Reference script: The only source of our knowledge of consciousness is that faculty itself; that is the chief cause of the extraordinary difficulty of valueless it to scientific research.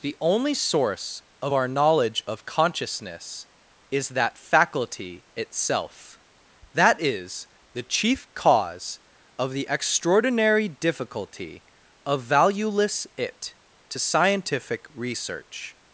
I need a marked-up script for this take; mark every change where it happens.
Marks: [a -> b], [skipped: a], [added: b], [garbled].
The only source of our knowledge of consciousness is that faculty itself; that is the chief cause of the extraordinary difficulty of valueless it to scientific research.